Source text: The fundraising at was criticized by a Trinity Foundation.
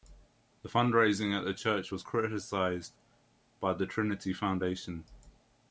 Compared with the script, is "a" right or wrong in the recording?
wrong